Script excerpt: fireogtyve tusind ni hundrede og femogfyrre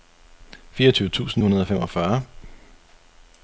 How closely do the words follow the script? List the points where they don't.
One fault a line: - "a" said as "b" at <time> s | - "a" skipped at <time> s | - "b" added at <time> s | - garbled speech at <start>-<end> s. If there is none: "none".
- "ni" skipped at 1.4 s